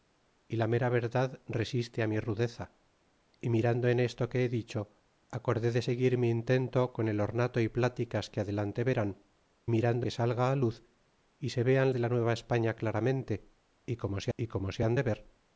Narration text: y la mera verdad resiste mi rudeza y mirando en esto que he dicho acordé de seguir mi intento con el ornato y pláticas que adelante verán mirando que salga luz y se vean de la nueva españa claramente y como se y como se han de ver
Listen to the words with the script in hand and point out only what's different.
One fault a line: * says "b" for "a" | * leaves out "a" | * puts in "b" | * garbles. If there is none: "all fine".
all fine